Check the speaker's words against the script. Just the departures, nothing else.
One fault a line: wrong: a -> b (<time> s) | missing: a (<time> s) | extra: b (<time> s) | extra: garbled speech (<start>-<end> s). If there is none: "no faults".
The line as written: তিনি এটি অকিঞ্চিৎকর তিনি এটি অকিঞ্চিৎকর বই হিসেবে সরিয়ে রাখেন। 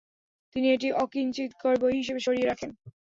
missing: তিনি এটি অকিঞ্চিৎকর (1.7 s)